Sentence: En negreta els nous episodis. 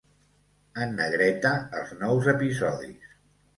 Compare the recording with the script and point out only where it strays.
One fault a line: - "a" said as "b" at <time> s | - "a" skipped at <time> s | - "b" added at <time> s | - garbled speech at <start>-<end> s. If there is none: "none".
none